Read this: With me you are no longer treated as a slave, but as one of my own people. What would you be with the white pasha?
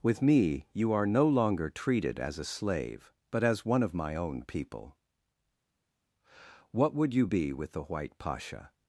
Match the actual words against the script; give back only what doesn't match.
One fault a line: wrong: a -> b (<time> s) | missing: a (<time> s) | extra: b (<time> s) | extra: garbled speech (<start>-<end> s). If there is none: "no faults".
no faults